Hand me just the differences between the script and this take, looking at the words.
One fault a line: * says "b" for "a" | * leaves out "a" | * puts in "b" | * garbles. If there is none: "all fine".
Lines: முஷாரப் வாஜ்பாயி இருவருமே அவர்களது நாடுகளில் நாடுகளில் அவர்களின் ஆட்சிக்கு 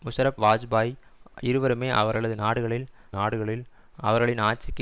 all fine